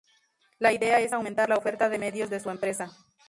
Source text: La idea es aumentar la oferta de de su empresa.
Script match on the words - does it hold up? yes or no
no